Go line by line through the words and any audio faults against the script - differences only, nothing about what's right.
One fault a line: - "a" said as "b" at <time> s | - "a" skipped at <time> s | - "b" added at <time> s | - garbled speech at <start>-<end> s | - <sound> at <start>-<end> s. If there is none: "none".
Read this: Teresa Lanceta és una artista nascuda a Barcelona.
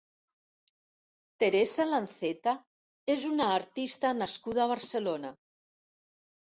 none